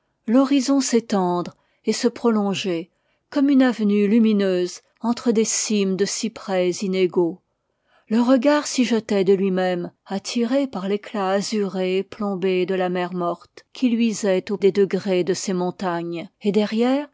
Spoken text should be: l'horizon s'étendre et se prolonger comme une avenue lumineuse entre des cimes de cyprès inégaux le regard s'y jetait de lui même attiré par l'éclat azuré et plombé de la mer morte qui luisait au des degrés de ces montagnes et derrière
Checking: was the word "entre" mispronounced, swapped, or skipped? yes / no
no